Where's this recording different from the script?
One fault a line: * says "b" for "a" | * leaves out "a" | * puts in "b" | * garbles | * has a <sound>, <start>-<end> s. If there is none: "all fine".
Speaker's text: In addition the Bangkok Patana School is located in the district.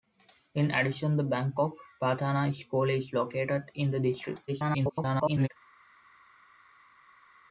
* garbles